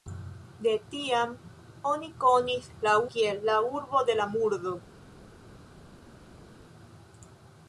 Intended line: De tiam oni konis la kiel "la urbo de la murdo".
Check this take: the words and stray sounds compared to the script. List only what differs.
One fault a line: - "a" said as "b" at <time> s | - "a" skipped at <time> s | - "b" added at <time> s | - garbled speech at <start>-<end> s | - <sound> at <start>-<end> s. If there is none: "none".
none